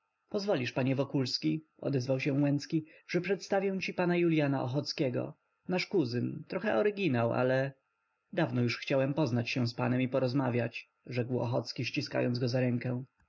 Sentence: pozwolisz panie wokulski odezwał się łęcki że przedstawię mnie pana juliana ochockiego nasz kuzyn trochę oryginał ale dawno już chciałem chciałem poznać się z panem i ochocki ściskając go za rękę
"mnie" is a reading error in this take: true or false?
true